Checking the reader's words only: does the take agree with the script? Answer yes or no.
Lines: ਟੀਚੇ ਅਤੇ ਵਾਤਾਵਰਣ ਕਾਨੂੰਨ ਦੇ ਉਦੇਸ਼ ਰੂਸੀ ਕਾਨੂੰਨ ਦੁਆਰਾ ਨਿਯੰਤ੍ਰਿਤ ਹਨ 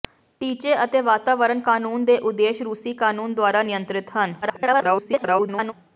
no